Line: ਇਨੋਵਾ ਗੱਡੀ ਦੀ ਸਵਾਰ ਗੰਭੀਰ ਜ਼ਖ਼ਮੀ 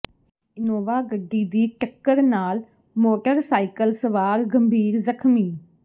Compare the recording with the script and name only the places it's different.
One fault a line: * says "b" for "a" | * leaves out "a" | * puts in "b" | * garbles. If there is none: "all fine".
* puts in "ਟੱਕਰ ਨਾਲ ਮੋਟਰਸਾਈਕਲ"